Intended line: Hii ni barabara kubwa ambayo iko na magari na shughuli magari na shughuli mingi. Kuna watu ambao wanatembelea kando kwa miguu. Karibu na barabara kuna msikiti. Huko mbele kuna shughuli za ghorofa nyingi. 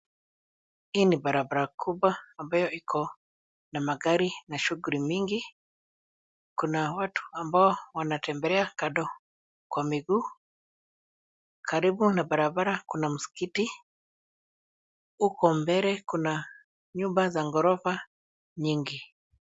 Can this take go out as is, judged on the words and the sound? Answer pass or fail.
fail